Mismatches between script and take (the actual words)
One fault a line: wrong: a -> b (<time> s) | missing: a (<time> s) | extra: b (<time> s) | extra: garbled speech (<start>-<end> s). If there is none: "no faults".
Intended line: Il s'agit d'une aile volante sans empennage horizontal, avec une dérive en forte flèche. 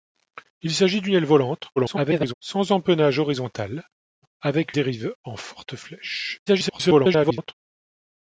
extra: garbled speech (1.8-2.3 s)
missing: une (4.7 s)
extra: garbled speech (6.5-7.5 s)